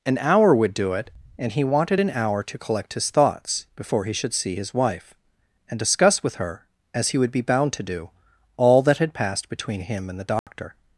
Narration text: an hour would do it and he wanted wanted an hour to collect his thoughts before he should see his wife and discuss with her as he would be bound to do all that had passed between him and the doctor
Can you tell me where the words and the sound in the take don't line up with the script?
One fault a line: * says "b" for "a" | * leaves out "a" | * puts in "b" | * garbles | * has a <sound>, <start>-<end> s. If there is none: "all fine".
* leaves out "wanted"
* has a dropout, 10.4-10.5 s